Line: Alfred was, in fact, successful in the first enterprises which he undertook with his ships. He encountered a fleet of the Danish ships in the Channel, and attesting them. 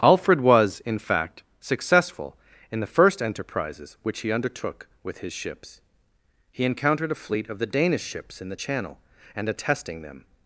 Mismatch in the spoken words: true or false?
false